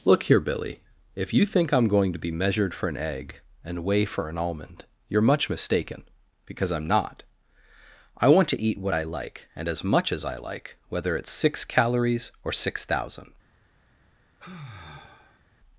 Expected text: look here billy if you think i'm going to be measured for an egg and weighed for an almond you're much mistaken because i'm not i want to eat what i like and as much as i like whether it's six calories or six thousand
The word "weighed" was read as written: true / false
false